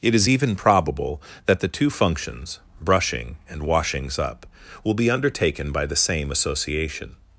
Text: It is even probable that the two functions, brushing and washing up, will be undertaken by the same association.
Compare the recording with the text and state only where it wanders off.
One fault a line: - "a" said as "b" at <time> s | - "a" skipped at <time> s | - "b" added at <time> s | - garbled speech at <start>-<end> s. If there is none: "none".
- "washing" said as "washings" at 3.6 s